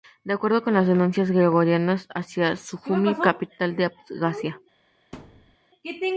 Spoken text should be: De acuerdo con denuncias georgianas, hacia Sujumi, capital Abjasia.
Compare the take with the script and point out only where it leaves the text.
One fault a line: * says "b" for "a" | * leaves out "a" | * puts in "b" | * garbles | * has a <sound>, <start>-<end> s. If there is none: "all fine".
* puts in "las"
* puts in "de"
* has a thud, 5.1-5.6 s